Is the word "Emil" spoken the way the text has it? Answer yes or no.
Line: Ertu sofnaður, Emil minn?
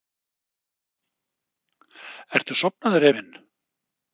no